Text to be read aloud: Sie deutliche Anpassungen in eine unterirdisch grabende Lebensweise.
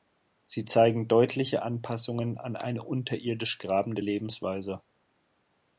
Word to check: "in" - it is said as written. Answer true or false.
false